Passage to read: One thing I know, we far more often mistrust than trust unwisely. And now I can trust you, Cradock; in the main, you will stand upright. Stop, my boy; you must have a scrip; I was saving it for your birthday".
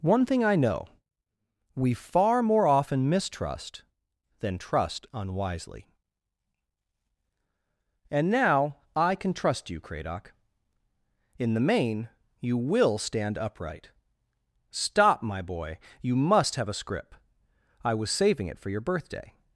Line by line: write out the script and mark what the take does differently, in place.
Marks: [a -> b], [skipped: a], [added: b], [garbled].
One thing I know, we far more often mistrust than trust unwisely. And now I can trust you, Cradock; in the main, you will stand upright. Stop, my boy; you must have a scrip; I was saving it for your birthday".